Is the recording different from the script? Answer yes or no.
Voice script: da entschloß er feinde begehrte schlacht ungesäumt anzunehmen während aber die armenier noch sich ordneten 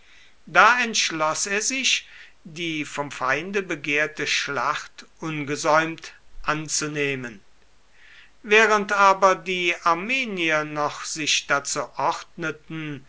yes